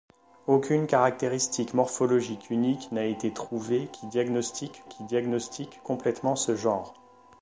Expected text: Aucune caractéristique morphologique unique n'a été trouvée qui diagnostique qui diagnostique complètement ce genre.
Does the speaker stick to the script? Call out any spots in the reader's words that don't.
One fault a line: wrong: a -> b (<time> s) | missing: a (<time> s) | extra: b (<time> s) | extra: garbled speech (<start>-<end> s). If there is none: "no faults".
no faults